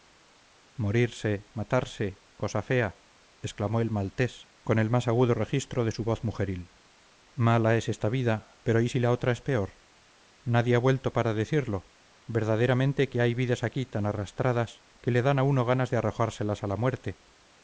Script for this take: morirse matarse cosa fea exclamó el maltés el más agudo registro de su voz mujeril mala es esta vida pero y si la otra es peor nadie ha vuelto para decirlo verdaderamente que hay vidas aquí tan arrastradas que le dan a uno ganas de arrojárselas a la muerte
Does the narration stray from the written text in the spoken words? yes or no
yes